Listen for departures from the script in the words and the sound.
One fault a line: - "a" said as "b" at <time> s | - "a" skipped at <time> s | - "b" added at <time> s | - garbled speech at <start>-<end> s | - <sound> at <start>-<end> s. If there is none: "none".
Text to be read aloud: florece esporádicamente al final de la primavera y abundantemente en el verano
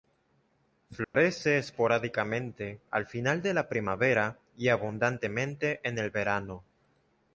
- dropout at 1.0-1.1 s